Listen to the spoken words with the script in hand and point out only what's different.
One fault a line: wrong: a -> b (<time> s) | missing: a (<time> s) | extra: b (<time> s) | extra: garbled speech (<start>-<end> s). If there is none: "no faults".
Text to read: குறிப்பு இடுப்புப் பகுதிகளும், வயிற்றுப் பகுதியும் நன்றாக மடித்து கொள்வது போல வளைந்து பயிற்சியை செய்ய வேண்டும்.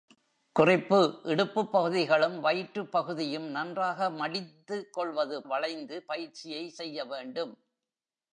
missing: போல (5.4 s)